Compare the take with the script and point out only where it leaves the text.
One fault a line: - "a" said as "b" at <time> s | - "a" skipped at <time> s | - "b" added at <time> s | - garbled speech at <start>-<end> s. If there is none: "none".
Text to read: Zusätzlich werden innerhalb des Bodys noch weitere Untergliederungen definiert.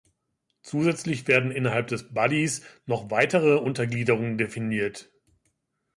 none